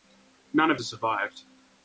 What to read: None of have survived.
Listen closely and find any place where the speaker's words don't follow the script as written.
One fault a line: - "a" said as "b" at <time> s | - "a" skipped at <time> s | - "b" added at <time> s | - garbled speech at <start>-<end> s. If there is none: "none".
none